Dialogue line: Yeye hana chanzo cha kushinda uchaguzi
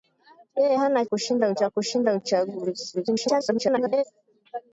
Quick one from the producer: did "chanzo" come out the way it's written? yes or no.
no